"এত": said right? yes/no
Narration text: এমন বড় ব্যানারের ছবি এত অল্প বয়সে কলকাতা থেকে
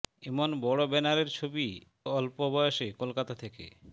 no